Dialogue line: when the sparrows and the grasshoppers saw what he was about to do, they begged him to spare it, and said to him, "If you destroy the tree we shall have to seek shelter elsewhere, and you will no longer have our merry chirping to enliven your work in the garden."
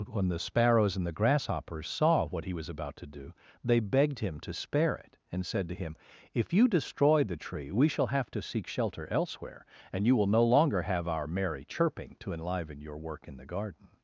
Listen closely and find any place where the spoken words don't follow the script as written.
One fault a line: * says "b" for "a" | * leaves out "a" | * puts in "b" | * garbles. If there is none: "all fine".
all fine